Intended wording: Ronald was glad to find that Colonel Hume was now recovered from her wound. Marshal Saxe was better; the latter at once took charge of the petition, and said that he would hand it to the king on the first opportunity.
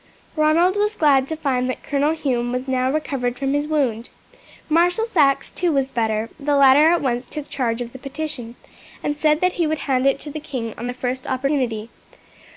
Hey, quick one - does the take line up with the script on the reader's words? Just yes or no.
no